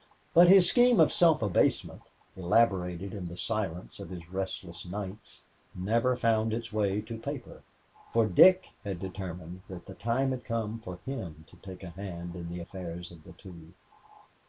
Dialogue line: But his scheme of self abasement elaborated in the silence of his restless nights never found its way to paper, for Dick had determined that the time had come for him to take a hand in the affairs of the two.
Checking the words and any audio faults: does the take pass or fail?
pass